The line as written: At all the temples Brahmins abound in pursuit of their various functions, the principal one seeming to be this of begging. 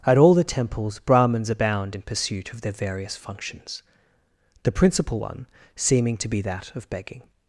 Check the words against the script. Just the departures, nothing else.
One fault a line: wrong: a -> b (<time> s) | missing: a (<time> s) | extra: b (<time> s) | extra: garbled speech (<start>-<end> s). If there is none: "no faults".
wrong: this -> that (6.4 s)